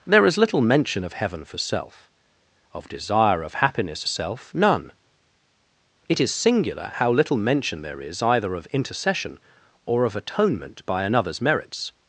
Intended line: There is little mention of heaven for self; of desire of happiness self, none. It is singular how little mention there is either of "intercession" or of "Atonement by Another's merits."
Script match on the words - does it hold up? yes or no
yes